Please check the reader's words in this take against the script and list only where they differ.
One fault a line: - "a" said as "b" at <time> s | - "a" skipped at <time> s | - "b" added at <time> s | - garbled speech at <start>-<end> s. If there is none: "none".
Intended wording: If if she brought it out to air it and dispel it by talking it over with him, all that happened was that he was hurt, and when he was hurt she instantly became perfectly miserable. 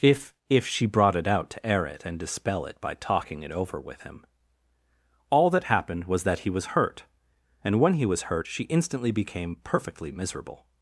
none